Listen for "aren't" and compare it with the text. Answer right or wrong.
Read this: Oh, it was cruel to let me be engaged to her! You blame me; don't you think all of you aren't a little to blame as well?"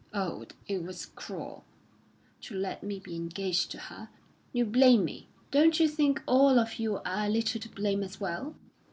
wrong